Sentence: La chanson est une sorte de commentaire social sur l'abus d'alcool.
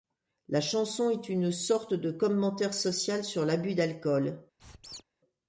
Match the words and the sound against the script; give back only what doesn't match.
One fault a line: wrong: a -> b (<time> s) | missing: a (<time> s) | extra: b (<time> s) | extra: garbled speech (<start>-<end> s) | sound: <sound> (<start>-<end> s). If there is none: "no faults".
sound: squeak (4.6-5.0 s)